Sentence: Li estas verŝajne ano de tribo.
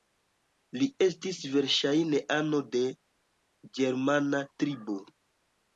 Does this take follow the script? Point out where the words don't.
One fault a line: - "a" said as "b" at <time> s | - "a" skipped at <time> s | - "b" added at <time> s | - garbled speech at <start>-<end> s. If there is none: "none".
- "estas" said as "estis" at 1.1 s
- "ĝermana" added at 3.8 s